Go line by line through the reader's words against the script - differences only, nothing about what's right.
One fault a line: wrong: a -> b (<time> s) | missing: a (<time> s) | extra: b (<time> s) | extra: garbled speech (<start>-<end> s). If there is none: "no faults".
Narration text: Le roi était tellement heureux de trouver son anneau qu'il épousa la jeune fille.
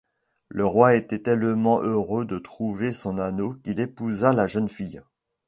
no faults